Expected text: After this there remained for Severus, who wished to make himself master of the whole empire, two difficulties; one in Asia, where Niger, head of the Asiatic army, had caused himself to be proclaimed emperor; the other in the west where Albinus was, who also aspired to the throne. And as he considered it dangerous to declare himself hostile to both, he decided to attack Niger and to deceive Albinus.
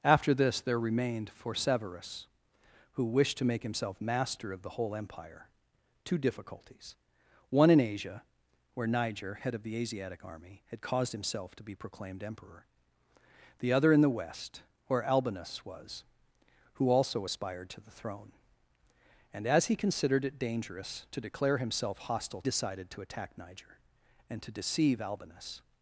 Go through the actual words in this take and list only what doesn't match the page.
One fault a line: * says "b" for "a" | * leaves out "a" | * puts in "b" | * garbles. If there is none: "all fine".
* leaves out "to both he"